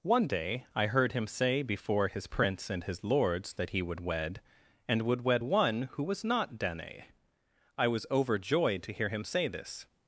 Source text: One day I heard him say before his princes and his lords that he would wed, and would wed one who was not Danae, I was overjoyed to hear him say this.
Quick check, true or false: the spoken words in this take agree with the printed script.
false